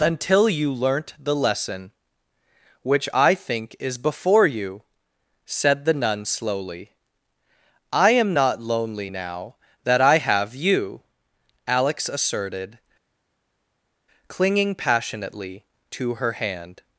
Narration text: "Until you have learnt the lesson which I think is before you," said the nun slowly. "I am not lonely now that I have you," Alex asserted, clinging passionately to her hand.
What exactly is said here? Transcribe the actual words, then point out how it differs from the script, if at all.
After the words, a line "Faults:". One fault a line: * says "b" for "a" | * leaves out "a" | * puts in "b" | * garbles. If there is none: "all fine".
"Until you learnt the lesson which I think is before you," said the nun slowly. "I am not lonely now that I have you," Alex asserted, clinging passionately to her hand.
Faults:
* leaves out "have"